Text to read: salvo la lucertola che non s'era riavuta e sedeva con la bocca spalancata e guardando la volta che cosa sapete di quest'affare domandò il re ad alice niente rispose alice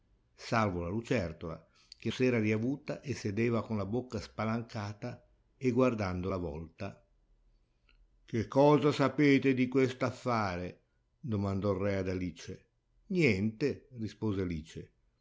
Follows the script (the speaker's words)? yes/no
no